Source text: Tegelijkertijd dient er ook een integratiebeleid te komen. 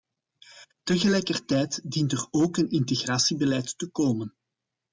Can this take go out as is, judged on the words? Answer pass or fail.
pass